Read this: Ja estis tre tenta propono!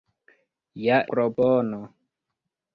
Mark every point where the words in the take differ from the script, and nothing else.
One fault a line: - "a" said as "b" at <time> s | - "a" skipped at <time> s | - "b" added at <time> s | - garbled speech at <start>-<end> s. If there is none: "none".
- "estis tre tenta" skipped at 0.9 s